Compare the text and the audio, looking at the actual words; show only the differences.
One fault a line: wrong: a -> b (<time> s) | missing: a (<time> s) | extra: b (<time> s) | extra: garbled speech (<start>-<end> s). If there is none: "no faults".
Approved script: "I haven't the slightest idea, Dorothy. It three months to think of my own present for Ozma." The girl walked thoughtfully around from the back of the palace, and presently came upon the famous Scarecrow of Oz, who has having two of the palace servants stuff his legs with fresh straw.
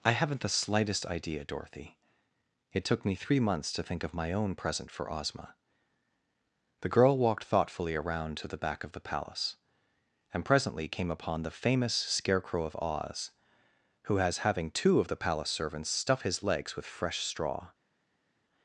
extra: took me (2.9 s)
wrong: from -> to (8.4 s)